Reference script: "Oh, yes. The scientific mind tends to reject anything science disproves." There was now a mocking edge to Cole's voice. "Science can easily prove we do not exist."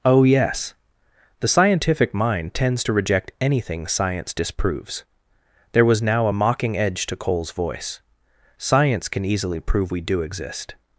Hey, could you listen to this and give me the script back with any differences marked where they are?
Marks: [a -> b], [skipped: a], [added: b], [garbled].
"Oh, yes. The scientific mind tends to reject anything science disproves." There was now a mocking edge to Cole's voice. "Science can easily prove we do [skipped: not] exist."